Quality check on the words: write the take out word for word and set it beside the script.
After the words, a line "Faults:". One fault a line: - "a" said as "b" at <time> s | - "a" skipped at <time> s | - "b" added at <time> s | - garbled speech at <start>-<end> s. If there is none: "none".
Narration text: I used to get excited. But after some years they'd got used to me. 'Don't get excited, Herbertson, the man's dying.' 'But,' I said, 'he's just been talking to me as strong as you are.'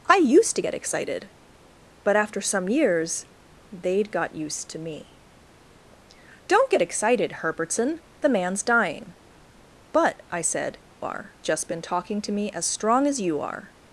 I used to get excited. But after some years they'd got used to me. 'Don't get excited, Herbertson, the man's dying.' 'But,' I said, 'are just been talking to me as strong as you are.'
Faults:
- "he's" said as "are" at 11.0 s